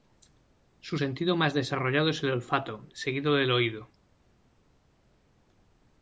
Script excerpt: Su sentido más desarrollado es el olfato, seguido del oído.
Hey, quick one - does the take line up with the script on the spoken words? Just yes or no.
yes